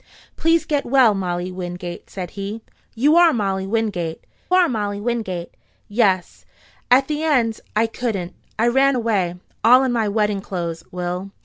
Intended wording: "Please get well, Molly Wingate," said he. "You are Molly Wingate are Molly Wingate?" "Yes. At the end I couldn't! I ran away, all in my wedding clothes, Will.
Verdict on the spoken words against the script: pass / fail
pass